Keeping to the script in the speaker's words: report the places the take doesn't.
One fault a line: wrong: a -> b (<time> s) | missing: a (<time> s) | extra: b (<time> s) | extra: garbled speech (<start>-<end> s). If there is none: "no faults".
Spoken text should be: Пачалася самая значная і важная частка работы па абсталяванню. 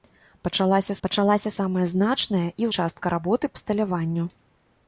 extra: пачалася (1.0 s)
missing: важная (2.7 s)
missing: па (3.5 s)